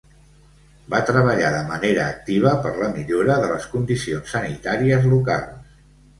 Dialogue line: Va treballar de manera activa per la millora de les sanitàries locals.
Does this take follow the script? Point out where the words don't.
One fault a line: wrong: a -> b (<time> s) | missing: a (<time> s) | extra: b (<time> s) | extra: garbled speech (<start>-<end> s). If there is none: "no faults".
extra: condicions (3.7 s)